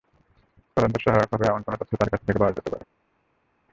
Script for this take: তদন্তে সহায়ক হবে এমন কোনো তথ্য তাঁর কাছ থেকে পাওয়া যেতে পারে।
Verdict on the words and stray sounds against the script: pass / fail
pass